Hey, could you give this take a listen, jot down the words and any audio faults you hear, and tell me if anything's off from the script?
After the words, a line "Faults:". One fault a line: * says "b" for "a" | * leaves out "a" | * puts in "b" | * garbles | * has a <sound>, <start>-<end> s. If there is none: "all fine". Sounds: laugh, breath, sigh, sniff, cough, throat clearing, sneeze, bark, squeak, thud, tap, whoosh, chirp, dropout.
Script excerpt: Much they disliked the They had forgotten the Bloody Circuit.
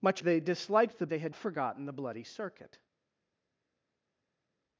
Much they disliked the They had forgotten the Bloody Circuit.
Faults:
all fine